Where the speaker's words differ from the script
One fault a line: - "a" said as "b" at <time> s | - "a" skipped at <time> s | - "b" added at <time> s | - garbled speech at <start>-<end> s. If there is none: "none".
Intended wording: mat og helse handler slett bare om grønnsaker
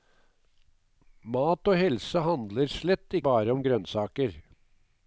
none